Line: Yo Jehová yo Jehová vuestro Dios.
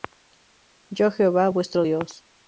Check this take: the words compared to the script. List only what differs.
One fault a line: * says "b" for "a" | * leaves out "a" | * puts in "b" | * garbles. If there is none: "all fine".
* leaves out "yo Jehová"